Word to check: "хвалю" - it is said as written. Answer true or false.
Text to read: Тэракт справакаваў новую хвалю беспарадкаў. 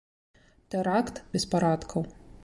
false